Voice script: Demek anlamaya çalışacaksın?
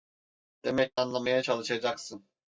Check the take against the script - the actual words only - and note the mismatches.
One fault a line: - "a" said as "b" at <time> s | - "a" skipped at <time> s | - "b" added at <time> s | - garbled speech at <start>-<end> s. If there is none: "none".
none